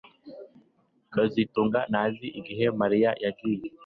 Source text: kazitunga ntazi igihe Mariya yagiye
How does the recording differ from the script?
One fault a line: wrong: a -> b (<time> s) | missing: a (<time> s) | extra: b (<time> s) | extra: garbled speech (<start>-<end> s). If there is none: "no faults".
no faults